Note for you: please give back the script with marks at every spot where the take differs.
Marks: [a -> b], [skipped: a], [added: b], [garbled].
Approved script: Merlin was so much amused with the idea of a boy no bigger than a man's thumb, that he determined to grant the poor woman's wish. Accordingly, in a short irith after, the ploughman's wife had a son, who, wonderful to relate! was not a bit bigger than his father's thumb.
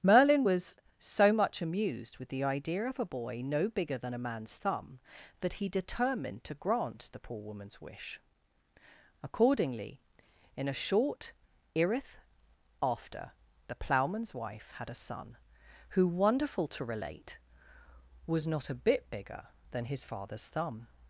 Merlin was so much amused with the idea of a boy no bigger than a man's thumb, that he determined to grant the poor woman's wish. Accordingly, in a short irith after, the ploughman's wife had a son, who, wonderful to relate! was not a bit bigger than his father's thumb.